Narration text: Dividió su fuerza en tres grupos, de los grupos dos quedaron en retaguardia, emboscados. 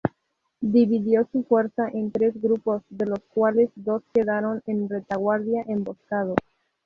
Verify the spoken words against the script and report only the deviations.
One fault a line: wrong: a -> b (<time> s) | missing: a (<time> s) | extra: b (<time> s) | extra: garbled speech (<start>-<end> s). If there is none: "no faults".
wrong: grupos -> cuales (3.3 s)